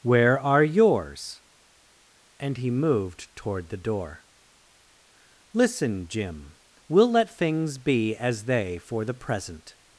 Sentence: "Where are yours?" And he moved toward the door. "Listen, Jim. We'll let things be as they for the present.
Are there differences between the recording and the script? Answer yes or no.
no